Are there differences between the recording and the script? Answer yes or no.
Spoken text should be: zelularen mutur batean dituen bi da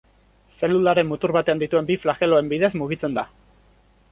yes